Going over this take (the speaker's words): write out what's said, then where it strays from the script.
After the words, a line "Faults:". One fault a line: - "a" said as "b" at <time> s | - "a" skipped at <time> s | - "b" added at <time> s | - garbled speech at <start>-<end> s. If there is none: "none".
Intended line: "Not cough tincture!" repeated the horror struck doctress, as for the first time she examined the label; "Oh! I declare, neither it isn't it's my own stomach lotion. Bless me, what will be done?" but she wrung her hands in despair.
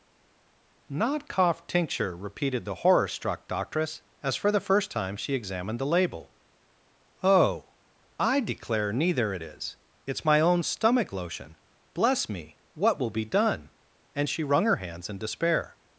"Not cough tincture!" repeated the horror struck doctress, as for the first time she examined the label; "Oh! I declare, neither it is it's my own stomach lotion. Bless me, what will be done?" and she wrung her hands in despair.
Faults:
- "isn't" said as "is" at 9.4 s
- "but" said as "and" at 14.1 s